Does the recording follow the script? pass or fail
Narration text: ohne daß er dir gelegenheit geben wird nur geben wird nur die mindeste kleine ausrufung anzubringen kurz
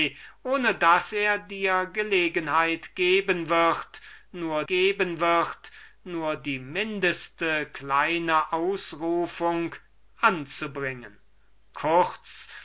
pass